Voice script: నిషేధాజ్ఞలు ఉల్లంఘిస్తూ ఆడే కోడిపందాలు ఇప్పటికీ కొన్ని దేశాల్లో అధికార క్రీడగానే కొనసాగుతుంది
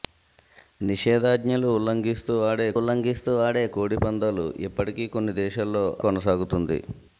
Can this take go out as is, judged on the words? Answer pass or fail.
fail